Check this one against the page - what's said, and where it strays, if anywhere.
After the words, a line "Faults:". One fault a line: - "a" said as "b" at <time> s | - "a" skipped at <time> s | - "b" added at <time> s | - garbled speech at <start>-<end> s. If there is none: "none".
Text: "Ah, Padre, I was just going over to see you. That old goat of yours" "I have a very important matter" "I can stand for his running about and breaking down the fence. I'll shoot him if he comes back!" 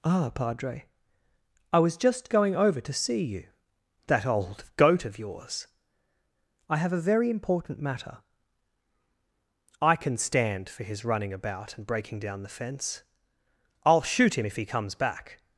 "Ah, Padre, I was just going over to see you. That old goat of yours" "I have a very important matter" "I can stand for his running about and breaking down the fence. I'll shoot him if he comes back!"
Faults:
none